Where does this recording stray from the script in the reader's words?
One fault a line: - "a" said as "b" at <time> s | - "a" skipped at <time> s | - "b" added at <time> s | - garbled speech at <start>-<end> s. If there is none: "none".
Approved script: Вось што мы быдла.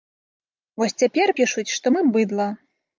- "цяпер пішуць" added at 1.0 s